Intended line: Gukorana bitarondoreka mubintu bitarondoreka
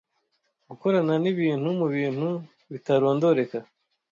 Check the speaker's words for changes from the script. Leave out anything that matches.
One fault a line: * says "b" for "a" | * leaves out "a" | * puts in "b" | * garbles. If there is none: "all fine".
* says "nibintu" for "bitarondoreka"